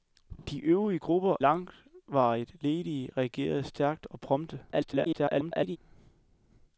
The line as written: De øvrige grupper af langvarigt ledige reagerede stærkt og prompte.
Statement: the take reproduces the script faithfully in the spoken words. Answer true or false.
false